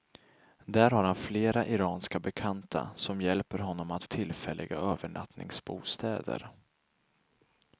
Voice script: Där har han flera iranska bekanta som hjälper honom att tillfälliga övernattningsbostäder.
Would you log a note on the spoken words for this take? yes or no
no